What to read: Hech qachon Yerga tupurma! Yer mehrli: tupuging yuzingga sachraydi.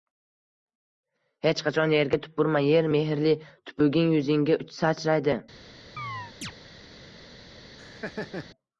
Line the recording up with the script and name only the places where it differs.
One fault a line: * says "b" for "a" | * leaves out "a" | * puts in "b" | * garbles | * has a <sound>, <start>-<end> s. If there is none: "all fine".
* has a chirp, 6.0-6.5 s
* has a laugh, 7.8-8.5 s